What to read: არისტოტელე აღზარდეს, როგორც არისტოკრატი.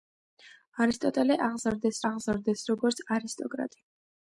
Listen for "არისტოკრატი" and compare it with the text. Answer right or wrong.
right